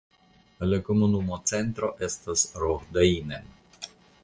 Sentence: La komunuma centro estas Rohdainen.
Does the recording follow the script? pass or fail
pass